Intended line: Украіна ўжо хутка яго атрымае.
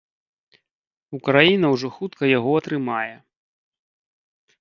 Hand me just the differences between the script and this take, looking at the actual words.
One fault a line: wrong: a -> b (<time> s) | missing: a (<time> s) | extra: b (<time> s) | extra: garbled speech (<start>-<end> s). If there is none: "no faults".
no faults